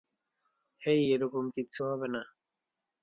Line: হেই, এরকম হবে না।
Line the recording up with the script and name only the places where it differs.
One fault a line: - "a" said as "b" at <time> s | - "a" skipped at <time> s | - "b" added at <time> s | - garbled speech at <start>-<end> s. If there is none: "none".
- "কিচ্ছু" added at 1.5 s